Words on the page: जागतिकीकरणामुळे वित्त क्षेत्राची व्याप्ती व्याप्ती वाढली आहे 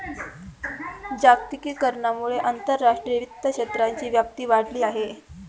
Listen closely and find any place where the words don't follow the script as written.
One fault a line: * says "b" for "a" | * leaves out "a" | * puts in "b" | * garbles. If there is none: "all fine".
* puts in "आंतरराष्ट्रीय"
* leaves out "व्याप्ती"